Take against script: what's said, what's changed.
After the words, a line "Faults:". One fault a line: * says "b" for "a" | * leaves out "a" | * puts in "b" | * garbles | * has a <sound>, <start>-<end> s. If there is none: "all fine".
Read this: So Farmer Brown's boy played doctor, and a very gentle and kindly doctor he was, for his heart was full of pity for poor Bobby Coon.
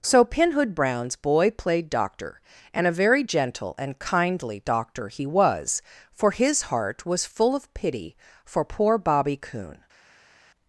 So Pinhood Brown's boy played doctor, and a very gentle and kindly doctor he was, for his heart was full of pity for poor Bobby Coon.
Faults:
* says "Pinhood" for "Farmer"